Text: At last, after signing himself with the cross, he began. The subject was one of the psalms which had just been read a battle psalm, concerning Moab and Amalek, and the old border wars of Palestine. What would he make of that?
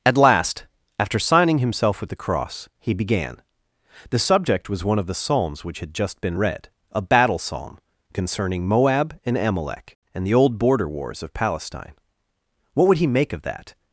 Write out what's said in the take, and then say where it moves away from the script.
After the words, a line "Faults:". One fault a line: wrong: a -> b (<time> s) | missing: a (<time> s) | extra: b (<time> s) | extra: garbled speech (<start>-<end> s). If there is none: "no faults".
At last, after signing himself with the cross, he began. The subject was one of the psalms which had just been read a battle psalm, concerning Moab and Amalek, and the old border wars of Palestine. What would he make of that?
Faults:
no faults